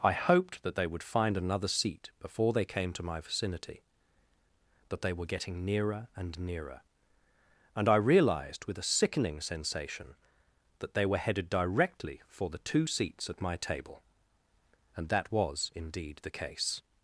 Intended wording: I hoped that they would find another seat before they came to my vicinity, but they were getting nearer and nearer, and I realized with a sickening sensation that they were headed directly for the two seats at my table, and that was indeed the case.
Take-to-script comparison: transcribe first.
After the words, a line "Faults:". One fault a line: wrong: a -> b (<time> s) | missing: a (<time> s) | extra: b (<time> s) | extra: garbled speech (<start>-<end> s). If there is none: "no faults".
I hoped that they would find another seat before they came to my vicinity, that they were getting nearer and nearer, and I realized with a sickening sensation that they were headed directly for the two seats at my table, and that was indeed the case.
Faults:
wrong: but -> that (4.9 s)